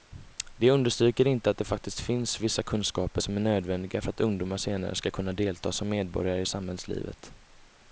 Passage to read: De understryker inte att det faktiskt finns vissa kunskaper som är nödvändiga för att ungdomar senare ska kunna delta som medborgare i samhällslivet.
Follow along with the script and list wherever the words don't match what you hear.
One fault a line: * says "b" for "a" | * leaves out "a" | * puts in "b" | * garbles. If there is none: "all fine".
all fine